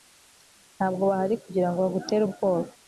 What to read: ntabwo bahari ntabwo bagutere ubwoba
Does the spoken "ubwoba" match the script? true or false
true